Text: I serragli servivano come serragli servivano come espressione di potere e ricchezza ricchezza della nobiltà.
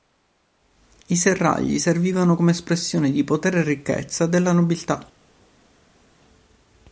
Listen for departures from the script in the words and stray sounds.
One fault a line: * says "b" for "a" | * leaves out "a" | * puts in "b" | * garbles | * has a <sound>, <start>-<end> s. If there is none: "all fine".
* leaves out "serragli servivano come"
* leaves out "ricchezza"